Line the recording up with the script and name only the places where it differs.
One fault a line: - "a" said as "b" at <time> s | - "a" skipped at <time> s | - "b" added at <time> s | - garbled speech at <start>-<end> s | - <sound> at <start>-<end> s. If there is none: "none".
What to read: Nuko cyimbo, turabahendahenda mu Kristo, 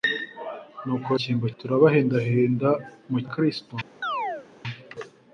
- chirp at 4.0-4.5 s